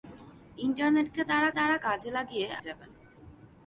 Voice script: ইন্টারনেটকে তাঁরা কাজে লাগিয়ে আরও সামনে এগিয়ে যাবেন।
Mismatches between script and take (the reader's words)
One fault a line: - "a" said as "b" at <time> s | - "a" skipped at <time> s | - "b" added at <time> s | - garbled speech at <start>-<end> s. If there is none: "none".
- "তাঁরা" added at 1.5 s
- "আরও সামনে এগিয়ে" skipped at 2.5 s